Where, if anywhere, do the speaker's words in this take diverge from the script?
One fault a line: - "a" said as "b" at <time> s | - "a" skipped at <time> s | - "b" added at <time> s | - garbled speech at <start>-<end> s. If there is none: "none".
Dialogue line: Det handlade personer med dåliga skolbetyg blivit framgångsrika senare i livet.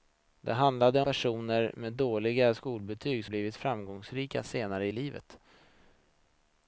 none